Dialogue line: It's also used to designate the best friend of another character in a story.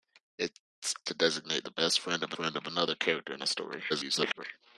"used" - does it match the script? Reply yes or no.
no